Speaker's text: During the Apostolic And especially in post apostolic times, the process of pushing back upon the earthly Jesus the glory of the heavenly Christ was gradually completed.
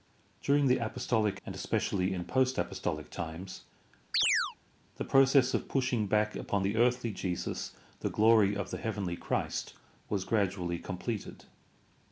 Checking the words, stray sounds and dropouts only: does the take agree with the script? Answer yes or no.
no